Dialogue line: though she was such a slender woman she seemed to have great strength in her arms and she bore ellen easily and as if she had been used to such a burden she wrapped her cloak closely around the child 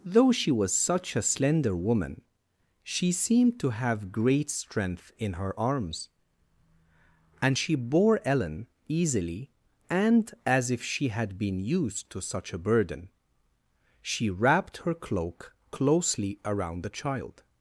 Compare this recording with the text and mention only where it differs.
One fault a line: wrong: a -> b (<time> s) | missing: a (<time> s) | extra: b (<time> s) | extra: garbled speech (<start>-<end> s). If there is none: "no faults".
no faults